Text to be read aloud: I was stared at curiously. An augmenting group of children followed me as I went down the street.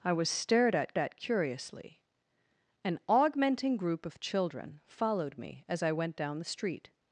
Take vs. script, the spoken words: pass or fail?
fail